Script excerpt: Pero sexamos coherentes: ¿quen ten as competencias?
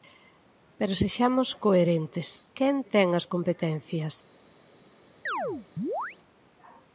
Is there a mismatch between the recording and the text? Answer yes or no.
no